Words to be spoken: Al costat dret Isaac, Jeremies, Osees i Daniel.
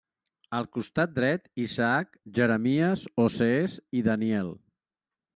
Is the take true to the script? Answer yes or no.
yes